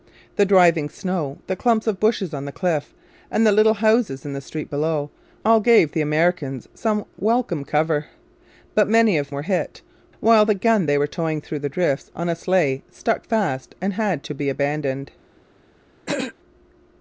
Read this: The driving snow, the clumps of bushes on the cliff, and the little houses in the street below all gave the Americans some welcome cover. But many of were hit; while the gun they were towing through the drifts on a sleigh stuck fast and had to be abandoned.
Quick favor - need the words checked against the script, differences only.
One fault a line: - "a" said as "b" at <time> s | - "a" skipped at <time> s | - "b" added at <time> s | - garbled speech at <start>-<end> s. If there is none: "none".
none